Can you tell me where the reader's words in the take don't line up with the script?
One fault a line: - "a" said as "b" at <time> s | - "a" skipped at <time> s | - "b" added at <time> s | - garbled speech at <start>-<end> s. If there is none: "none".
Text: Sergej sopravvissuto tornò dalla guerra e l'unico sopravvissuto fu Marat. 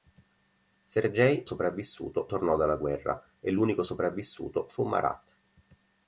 none